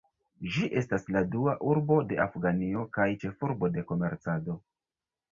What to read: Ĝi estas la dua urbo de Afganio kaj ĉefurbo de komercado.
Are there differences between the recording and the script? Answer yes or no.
no